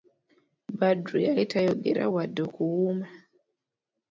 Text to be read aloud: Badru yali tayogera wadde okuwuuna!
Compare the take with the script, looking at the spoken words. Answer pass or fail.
pass